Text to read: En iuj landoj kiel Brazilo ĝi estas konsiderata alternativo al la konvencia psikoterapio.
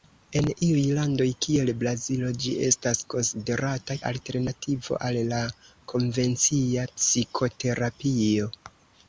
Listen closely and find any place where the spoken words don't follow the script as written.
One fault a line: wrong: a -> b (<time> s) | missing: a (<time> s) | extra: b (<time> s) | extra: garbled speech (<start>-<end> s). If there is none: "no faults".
no faults